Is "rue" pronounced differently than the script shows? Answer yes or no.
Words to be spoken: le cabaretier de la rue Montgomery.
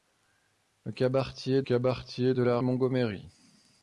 yes